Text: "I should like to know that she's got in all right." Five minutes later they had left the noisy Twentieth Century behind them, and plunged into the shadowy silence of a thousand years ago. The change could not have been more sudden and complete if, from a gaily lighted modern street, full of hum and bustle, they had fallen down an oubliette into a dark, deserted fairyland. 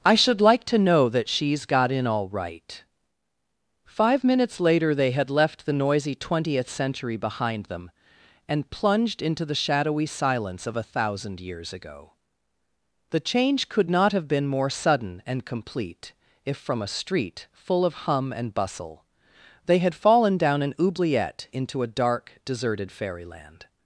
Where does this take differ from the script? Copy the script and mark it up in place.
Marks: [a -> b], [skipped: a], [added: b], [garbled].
"I should like to know that she's got in all right." Five minutes later they had left the noisy Twentieth Century behind them, and plunged into the shadowy silence of a thousand years ago. The change could not have been more sudden and complete if, from a [skipped: gaily lighted modern] street, full of hum and bustle, they had fallen down an oubliette into a dark, deserted fairyland.